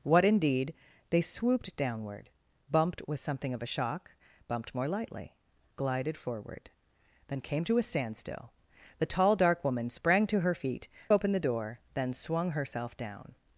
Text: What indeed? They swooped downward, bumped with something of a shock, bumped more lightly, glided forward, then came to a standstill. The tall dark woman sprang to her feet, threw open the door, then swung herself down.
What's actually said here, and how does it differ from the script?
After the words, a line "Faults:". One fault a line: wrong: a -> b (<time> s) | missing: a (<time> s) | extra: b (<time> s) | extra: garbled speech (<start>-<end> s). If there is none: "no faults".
What indeed? They swooped downward, bumped with something of a shock, bumped more lightly, glided forward, then came to a standstill. The tall dark woman sprang to her feet, open the door, then swung herself down.
Faults:
missing: threw (10.9 s)